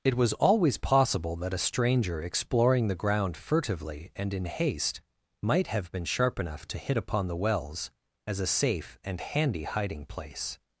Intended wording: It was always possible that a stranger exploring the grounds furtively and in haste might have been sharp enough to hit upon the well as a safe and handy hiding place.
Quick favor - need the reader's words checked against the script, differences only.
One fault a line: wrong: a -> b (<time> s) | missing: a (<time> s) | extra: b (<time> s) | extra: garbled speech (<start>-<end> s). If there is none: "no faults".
wrong: grounds -> ground (3.0 s)
wrong: well -> wells (7.3 s)